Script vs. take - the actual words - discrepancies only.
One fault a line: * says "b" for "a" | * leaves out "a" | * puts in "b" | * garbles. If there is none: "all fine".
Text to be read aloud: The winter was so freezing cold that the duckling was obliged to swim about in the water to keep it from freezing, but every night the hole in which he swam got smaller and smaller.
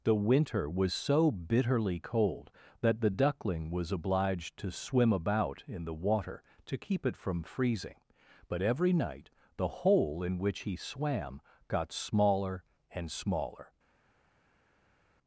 * says "bitterly" for "freezing"